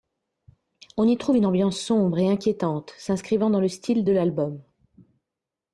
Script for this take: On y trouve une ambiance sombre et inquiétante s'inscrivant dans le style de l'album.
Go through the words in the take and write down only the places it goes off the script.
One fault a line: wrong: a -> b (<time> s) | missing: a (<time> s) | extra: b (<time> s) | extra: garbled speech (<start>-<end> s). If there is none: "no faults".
no faults